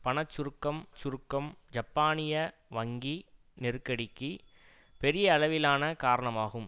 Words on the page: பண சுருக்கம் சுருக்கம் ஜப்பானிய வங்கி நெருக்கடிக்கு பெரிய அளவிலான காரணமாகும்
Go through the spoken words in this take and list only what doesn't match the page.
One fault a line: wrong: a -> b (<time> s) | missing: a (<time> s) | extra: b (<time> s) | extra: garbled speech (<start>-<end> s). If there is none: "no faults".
no faults